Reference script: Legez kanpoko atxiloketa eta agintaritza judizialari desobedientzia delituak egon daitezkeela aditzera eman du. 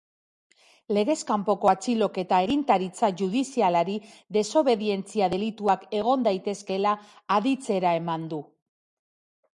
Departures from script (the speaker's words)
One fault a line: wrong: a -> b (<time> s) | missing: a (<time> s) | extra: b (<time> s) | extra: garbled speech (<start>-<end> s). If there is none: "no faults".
missing: eta (2.4 s)